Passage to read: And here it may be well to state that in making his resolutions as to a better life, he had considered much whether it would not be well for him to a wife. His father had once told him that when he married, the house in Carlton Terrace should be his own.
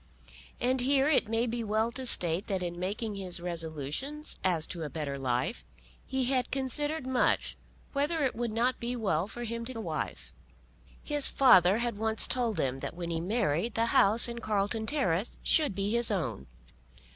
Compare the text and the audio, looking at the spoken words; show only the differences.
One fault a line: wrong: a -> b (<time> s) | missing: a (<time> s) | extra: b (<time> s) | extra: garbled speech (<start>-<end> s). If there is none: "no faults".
no faults